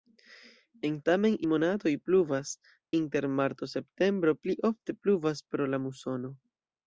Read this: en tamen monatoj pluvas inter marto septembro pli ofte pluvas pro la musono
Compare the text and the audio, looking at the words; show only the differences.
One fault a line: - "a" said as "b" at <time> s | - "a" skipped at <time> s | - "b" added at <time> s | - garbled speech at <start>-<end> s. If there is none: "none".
none